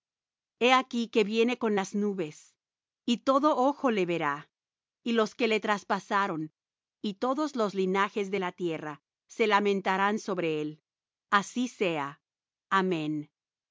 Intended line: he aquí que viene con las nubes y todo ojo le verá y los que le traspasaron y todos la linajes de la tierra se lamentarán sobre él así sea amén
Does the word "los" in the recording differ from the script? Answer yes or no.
no